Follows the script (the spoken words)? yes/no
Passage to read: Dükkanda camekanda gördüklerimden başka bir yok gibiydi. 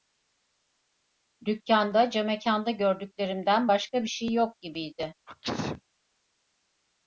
no